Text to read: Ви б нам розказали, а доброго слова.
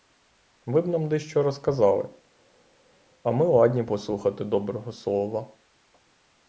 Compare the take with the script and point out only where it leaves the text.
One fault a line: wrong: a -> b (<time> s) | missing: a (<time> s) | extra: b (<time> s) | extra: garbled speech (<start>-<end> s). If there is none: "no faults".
extra: дещо (1.1 s)
extra: ми ладні послухати (3.3 s)